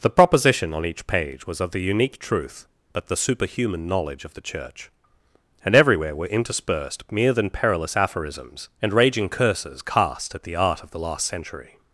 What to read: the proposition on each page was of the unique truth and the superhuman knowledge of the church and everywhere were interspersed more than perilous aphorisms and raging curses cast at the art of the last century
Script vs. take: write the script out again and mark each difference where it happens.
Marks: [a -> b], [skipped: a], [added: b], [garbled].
the proposition on each page was of the unique truth [and -> but] the superhuman knowledge of the church and everywhere were interspersed [more -> mere] than perilous aphorisms and raging curses cast at the art of the last century